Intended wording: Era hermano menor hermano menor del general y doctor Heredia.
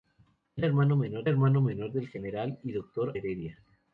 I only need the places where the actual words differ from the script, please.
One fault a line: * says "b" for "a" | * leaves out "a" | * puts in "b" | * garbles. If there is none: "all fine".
all fine